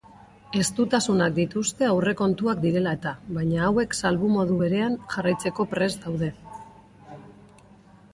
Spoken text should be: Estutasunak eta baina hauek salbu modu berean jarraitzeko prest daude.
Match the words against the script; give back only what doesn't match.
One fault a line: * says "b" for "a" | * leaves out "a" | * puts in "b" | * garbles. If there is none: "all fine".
* puts in "dituzte aurrekontuak direla"